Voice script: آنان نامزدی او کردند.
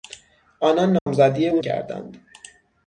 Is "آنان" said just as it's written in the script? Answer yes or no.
yes